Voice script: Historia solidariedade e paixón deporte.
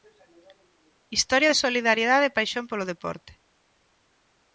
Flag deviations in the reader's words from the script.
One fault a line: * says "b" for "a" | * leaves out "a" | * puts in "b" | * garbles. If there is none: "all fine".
* puts in "de"
* puts in "polo"